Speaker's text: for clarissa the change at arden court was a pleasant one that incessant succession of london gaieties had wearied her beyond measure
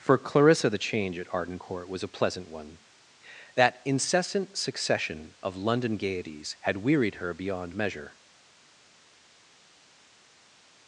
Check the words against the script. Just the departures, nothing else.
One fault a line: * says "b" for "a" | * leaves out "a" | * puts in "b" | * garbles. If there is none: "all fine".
all fine